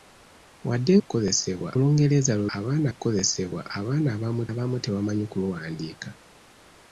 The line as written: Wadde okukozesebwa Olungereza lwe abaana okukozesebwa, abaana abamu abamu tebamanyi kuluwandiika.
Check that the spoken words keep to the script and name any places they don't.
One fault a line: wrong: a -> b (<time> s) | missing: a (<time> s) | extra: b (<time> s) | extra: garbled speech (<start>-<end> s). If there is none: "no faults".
no faults